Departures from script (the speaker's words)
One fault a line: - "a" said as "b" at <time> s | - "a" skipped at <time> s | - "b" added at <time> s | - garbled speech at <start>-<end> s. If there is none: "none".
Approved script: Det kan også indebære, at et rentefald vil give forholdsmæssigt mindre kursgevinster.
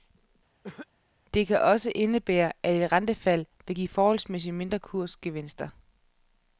none